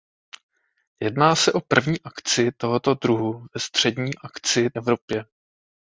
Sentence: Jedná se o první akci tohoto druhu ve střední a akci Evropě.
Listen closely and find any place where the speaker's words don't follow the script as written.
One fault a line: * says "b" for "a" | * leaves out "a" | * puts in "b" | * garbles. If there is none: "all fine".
all fine